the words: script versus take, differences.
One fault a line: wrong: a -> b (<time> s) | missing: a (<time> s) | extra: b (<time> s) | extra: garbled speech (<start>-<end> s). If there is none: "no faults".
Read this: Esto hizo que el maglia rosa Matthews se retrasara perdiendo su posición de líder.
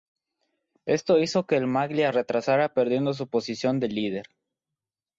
missing: rosa Matthews se (2.1 s)